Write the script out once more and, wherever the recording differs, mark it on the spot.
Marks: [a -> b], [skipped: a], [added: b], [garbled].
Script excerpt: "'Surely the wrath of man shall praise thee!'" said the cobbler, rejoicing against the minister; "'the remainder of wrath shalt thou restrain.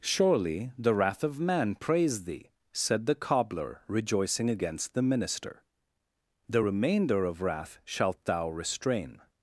"'Surely the wrath of man [skipped: shall] praise thee!'" said the cobbler, rejoicing against the minister; "'the remainder of wrath shalt thou restrain.